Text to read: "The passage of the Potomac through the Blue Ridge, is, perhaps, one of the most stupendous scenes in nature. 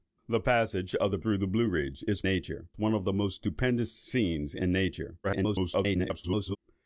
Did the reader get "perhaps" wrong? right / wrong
wrong